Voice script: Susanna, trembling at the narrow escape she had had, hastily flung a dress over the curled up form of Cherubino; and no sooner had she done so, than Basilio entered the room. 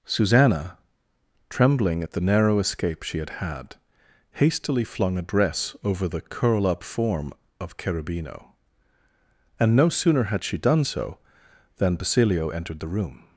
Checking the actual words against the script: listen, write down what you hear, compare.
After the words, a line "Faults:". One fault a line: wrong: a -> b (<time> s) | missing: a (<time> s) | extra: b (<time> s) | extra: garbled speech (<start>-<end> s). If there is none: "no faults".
Susanna, trembling at the narrow escape she had had, hastily flung a dress over the curl up form of Cherubino; and no sooner had she done so, than Basilio entered the room.
Faults:
wrong: curled -> curl (6.2 s)